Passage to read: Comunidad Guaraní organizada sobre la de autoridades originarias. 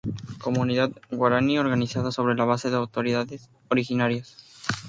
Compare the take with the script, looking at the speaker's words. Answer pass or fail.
fail